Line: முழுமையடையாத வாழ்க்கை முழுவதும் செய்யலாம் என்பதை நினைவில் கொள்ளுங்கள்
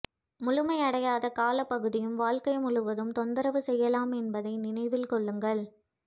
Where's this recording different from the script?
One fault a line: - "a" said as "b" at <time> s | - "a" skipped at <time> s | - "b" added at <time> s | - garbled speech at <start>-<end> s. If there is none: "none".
- "காலப்பகுதியும்" added at 1.3 s
- "தொந்தரவு" added at 3.1 s